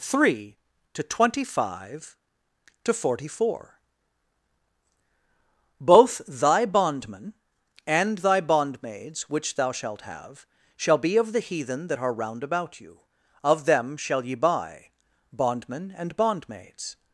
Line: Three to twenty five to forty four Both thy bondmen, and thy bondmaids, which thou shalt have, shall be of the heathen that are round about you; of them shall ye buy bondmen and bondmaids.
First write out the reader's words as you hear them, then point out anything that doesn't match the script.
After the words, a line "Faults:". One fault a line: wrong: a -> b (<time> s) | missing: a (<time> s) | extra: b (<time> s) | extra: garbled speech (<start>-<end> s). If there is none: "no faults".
Three to twenty five to forty four Both thy bondmen, and thy bondmaids, which thou shalt have, shall be of the heathen that are round about you; of them shall ye buy bondmen and bondmaids.
Faults:
no faults